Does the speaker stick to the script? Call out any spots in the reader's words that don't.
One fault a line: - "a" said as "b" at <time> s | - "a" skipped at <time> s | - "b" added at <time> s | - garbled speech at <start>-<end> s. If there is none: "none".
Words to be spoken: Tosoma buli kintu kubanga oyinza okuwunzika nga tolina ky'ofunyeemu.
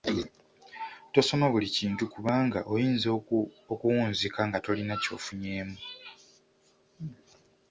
none